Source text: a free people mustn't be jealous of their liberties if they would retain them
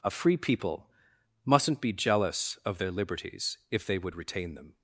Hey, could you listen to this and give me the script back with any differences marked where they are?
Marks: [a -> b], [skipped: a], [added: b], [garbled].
a free people mustn't be jealous of their liberties if they would retain them